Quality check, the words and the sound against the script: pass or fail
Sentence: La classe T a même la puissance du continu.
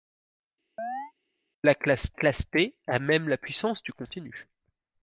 fail